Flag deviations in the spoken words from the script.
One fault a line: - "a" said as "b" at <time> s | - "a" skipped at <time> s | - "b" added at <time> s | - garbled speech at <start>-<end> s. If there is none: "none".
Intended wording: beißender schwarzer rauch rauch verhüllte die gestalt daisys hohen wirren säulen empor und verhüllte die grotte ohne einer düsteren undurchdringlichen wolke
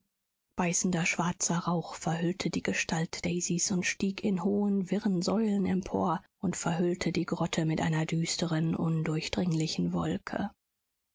- "rauch" skipped at 1.9 s
- "und stieg in" added at 3.7 s
- "ohne" said as "mit" at 7.6 s